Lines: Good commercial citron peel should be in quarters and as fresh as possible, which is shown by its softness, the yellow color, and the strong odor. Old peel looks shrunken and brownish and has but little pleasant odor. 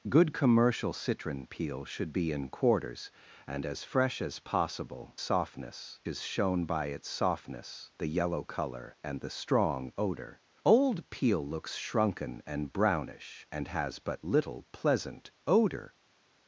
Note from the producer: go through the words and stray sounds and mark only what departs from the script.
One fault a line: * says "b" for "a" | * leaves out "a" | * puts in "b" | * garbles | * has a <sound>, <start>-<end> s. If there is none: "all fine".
* says "softness" for "which"